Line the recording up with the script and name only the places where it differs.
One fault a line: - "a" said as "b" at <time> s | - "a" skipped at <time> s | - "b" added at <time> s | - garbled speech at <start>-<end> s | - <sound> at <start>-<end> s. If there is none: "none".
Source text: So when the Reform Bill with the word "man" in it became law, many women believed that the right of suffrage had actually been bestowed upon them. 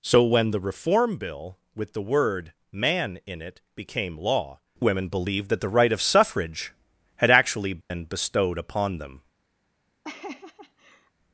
- "many" skipped at 4.6 s
- dropout at 7.8-7.9 s
- laugh at 10.0-11.1 s